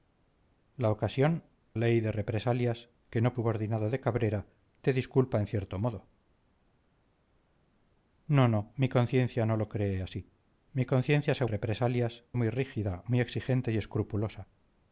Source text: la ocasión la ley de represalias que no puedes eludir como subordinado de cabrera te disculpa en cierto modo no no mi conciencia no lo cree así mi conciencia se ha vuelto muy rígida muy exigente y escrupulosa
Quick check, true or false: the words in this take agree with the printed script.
false